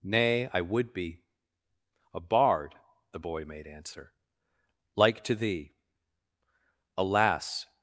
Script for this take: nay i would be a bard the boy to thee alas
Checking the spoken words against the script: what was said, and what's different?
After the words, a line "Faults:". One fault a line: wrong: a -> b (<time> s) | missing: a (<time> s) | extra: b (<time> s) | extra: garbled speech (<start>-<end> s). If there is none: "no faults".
nay i would be a bard the boy made answer like to thee alas
Faults:
extra: made answer like (3.4 s)